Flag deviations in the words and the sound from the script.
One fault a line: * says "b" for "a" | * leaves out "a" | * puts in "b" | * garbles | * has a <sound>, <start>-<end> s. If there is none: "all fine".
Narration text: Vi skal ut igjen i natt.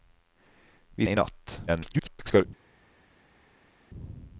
* leaves out "skal ut igjen"
* garbles